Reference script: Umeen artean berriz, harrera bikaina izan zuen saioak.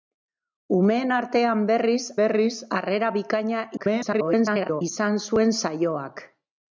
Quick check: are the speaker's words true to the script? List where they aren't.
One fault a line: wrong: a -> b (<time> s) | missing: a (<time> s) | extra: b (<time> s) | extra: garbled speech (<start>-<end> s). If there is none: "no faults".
extra: berriz (2.2 s)
extra: garbled speech (3.8-4.8 s)